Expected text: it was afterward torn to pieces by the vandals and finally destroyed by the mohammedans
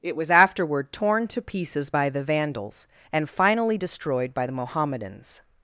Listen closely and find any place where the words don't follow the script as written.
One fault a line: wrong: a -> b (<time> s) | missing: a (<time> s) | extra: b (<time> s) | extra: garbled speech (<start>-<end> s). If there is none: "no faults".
no faults